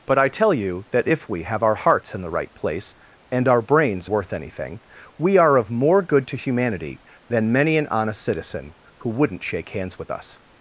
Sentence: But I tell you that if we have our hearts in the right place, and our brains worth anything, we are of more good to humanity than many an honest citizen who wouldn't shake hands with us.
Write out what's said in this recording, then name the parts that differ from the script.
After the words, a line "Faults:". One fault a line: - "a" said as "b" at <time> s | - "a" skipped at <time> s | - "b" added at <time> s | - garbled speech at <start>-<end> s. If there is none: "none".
But I tell you that if we have our hearts in the right place, and our brains worth anything, we are of more good to humanity than many an honest citizen who wouldn't shake hands with us.
Faults:
none